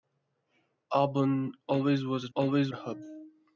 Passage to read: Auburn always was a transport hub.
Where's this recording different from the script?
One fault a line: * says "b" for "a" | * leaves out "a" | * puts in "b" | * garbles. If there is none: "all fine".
* says "always" for "transport"